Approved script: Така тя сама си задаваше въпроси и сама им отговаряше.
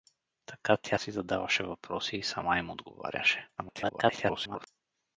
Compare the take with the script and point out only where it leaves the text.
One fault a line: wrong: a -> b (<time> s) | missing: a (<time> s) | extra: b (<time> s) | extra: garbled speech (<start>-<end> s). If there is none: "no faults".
missing: сама (1.0 s)
extra: garbled speech (3.6-4.7 s)